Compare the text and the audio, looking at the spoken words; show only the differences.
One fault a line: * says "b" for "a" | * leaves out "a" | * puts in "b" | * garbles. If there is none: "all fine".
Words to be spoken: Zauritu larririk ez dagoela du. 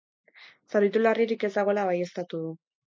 * puts in "baieztatu"